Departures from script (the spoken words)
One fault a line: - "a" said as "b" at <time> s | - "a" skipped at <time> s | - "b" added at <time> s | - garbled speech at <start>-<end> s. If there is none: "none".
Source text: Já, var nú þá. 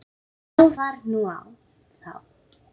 none